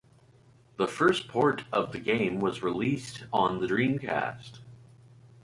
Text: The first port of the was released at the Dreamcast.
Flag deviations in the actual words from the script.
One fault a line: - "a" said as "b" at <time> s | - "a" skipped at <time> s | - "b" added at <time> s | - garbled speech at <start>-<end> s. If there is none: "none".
- "game" added at 2.0 s
- "at" said as "on" at 3.3 s